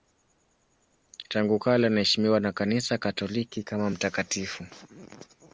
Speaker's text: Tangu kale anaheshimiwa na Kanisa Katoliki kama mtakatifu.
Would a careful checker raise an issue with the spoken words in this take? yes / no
no